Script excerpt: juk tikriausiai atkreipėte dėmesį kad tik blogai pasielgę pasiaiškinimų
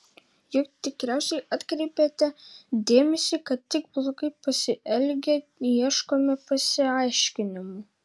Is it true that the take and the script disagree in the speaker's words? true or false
true